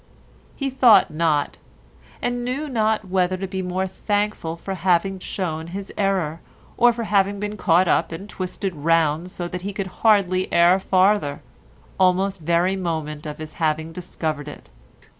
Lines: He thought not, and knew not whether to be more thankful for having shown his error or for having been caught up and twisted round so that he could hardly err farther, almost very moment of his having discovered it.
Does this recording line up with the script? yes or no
yes